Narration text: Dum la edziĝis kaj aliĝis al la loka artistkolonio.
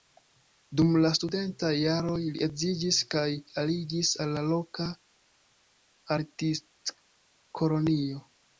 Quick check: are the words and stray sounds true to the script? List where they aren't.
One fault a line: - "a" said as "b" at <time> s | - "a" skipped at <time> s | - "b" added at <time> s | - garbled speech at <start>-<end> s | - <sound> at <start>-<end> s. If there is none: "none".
- "studentaj jaroj li" added at 1.2 s